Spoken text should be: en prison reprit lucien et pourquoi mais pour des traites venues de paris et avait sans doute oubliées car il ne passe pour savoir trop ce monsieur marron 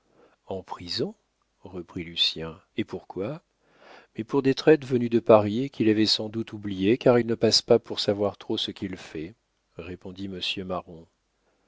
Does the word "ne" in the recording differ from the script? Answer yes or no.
no